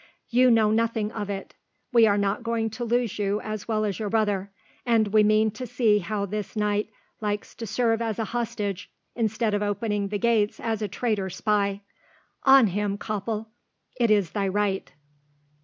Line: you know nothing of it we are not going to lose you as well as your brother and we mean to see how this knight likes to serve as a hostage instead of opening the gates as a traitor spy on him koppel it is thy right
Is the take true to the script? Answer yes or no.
yes